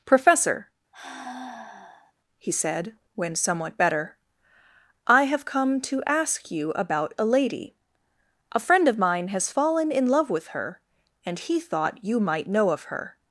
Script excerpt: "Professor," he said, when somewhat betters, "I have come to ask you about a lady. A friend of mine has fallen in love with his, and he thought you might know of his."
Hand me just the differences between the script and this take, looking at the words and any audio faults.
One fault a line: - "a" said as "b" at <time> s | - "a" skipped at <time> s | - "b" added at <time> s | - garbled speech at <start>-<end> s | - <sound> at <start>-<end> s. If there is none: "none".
- sigh at 0.9-2.1 s
- "betters" said as "better" at 3.8 s
- "his" said as "her" at 10.5 s
- "his" said as "her" at 12.8 s